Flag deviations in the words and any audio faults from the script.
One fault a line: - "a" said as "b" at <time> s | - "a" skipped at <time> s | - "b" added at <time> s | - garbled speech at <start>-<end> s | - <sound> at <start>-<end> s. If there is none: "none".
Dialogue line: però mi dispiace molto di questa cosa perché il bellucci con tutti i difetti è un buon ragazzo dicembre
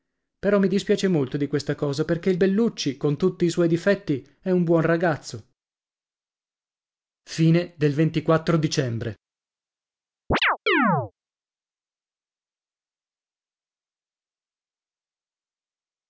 - "suoi" added at 3.5 s
- chirp at 10.3-11.1 s